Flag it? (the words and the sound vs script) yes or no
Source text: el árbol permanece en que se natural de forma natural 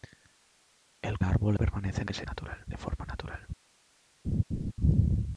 yes